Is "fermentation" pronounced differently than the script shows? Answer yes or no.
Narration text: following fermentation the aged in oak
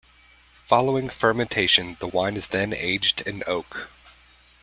no